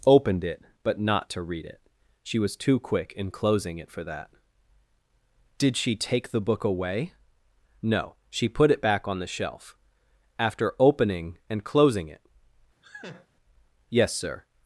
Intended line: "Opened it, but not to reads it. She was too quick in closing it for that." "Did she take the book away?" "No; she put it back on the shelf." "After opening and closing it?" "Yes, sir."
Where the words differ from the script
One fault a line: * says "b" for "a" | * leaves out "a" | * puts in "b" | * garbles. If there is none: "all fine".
* says "read" for "reads"